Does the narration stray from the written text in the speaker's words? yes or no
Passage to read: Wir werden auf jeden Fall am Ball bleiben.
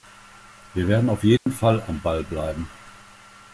no